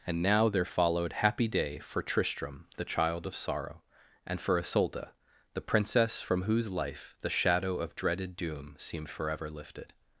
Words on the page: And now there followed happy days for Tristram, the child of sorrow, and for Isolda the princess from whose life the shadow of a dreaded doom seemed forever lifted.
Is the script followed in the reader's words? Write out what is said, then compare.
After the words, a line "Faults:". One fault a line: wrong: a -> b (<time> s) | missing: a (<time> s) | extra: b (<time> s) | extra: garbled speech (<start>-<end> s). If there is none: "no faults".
And now there followed happy day for Tristram, the child of sorrow, and for Isolda the princess from whose life the shadow of dreaded doom seemed forever lifted.
Faults:
wrong: days -> day (1.5 s)
missing: a (8.0 s)